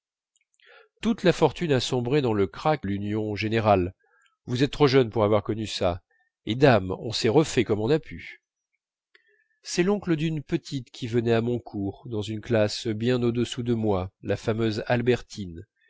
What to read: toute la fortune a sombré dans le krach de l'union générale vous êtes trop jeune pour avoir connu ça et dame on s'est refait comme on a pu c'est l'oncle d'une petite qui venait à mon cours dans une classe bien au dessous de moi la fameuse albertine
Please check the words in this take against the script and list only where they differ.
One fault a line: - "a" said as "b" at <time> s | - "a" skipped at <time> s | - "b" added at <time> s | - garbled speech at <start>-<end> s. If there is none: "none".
- "de" skipped at 2.9 s